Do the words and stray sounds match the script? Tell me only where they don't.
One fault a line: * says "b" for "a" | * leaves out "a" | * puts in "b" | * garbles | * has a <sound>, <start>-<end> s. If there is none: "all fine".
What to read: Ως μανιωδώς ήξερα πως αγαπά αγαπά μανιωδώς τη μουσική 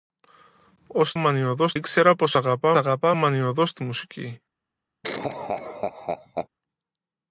* has a laugh, 5.0-6.5 s